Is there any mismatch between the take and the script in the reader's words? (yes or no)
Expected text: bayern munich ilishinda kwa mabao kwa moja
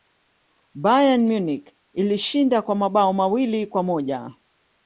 yes